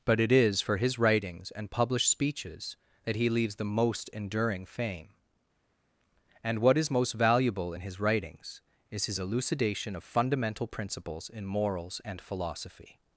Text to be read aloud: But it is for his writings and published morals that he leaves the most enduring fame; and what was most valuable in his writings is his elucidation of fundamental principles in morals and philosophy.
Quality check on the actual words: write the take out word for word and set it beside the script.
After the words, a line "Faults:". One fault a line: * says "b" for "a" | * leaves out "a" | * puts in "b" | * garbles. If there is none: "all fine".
But it is for his writings and published speeches that he leaves the most enduring fame; and what is most valuable in his writings is his elucidation of fundamental principles in morals and philosophy.
Faults:
* says "speeches" for "morals"
* says "is" for "was"